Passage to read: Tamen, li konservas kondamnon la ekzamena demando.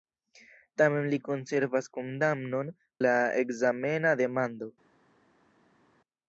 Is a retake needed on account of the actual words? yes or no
no